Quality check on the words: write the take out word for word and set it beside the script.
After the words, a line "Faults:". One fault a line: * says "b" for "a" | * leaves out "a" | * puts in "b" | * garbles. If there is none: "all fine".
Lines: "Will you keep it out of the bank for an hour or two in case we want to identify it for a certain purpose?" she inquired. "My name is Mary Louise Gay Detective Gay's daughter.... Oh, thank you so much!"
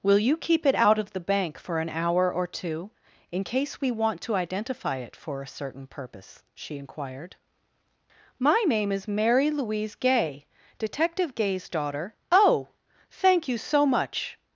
"Will you keep it out of the bank for an hour or two in case we want to identify it for a certain purpose?" she inquired. "My name is Mary Louise Gay Detective Gay's daughter.... Oh, thank you so much!"
Faults:
all fine